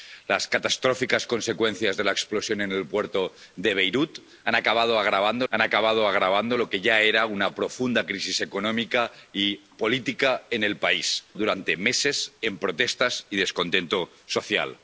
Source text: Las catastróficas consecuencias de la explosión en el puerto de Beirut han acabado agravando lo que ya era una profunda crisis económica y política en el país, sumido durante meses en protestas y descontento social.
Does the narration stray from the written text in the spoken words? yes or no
yes